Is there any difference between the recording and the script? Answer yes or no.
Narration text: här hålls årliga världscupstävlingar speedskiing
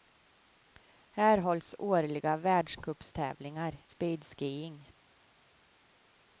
no